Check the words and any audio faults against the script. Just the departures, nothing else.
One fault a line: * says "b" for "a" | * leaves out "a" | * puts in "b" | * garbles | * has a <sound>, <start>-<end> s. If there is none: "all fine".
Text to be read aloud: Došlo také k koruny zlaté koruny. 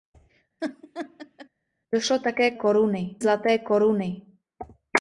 * has a laugh, 0.6-1.5 s